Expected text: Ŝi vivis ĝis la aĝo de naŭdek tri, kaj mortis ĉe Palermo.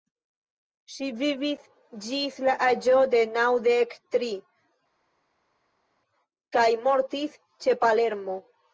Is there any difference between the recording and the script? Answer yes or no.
no